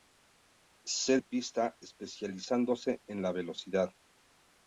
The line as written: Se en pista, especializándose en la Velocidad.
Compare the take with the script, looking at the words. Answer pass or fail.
pass